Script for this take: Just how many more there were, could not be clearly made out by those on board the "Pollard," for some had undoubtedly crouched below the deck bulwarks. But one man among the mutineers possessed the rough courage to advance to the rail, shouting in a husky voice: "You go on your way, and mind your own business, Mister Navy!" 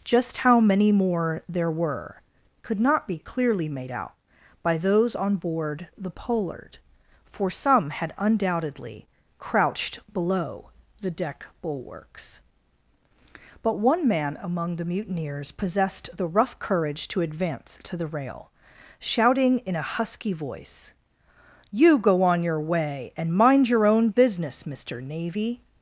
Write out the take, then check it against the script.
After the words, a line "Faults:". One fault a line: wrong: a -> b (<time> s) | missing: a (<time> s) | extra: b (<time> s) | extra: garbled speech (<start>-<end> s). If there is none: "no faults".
Just how many more there were, could not be clearly made out by those on board the "Pollard," for some had undoubtedly crouched below the deck bulwarks. But one man among the mutineers possessed the rough courage to advance to the rail, shouting in a husky voice: "You go on your way, and mind your own business, Mister Navy!"
Faults:
no faults